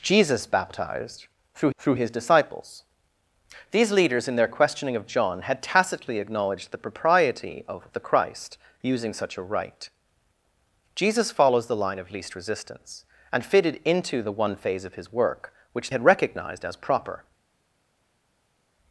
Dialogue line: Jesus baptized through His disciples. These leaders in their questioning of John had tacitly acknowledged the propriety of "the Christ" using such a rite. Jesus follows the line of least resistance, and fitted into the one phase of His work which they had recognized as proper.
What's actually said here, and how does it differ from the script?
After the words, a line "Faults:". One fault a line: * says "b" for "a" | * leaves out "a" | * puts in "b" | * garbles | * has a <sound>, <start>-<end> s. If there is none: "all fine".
Jesus baptized through through His disciples. These leaders in their questioning of John had tacitly acknowledged the propriety of "the Christ" using such a rite. Jesus follows the line of least resistance, and fitted into the one phase of His work which had recognized as proper.
Faults:
* puts in "through"
* leaves out "they"